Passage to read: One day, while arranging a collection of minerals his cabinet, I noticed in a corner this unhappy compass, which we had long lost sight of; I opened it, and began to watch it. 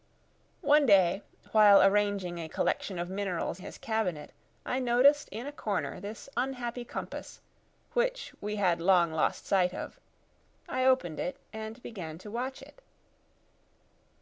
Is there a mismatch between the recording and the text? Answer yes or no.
no